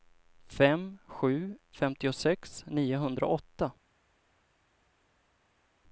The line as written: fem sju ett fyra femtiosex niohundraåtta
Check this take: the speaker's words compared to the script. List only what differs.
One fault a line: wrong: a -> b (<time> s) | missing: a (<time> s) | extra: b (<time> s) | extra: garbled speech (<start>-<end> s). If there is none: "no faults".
missing: ett fyra (1.6 s)